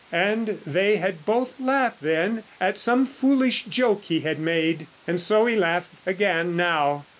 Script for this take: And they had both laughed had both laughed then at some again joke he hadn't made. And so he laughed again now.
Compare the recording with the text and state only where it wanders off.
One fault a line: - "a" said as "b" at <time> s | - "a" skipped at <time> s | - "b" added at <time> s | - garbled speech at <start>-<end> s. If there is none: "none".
- "had both laughed" skipped at 2.0 s
- "again" said as "foolish" at 3.0 s
- "hadn't" said as "had" at 4.2 s